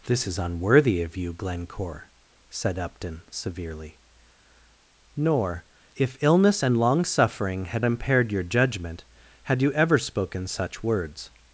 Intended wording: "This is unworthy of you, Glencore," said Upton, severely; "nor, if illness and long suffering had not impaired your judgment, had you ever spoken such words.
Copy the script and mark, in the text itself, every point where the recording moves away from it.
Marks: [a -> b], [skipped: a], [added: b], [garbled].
"This is unworthy of you, Glencore," said Upton, severely; "nor, if illness and long suffering had [skipped: not] impaired your judgment, had you ever spoken such words.